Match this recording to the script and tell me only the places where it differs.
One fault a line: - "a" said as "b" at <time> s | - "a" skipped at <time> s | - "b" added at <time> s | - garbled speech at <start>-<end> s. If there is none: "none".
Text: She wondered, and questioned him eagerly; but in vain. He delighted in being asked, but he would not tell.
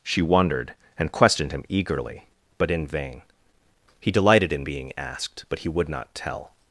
none